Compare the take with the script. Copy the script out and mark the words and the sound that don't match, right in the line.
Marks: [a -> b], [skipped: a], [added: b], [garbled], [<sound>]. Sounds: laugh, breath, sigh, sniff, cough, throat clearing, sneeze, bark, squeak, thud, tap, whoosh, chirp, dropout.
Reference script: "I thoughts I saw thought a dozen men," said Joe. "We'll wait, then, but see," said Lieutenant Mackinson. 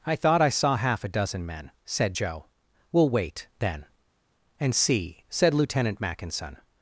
"I [thoughts -> thought] I saw [thought -> half] a dozen men," said Joe. "We'll wait, then, [but -> and] see," said Lieutenant Mackinson.